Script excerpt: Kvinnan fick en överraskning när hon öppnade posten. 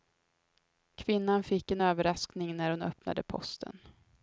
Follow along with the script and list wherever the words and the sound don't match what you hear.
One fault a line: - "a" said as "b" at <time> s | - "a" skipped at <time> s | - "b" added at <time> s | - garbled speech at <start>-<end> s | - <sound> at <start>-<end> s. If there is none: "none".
none